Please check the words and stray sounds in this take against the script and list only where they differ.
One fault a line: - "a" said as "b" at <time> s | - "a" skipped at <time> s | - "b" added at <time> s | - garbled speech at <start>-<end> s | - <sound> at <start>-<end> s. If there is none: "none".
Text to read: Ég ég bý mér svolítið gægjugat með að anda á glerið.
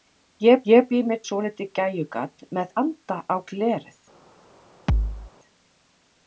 - thud at 4.9-5.3 s